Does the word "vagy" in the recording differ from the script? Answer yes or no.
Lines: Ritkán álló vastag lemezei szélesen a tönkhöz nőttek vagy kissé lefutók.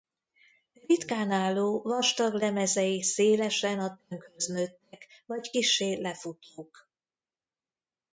no